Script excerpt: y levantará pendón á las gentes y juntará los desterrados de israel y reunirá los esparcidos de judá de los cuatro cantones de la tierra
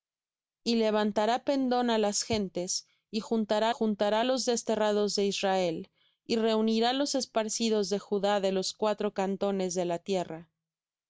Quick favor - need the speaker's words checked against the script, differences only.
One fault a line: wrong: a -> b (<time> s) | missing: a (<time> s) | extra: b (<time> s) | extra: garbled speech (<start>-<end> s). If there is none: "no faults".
extra: juntará (3.7 s)